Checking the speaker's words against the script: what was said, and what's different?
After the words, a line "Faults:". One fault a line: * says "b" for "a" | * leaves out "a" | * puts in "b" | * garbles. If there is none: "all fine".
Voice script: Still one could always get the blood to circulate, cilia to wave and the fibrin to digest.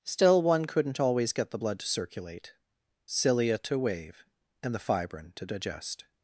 Still one couldn't always get the blood to circulate, cilia to wave and the fibrin to digest.
Faults:
* says "couldn't" for "could"